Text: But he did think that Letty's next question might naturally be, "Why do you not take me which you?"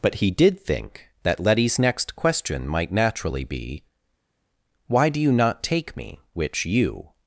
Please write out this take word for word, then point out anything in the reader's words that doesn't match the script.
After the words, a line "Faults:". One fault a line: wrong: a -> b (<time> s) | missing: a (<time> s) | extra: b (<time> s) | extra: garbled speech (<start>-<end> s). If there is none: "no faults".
But he did think that Letty's next question might naturally be, "Why do you not take me which you?"
Faults:
no faults